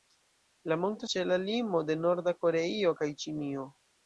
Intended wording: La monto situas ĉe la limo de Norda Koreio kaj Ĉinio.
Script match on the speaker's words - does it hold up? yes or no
no